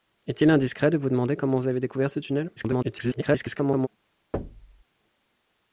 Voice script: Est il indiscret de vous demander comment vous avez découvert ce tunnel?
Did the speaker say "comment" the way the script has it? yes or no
yes